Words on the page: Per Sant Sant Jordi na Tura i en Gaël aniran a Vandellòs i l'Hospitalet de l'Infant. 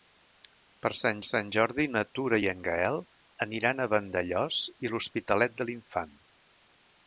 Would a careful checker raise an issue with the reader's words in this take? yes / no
no